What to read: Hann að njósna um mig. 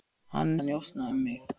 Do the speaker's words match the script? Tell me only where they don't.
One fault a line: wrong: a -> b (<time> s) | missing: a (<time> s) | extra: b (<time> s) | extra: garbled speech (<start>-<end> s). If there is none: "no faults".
no faults